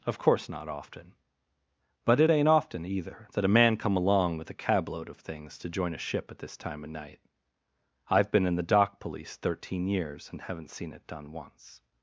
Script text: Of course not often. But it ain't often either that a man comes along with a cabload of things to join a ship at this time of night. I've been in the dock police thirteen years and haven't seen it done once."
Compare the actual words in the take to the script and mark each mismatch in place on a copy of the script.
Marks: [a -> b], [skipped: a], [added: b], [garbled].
Of course not often. But it ain't often either that a man [comes -> come] along with a cabload of things to join a ship at this time of night. I've been in the dock police thirteen years and haven't seen it done once."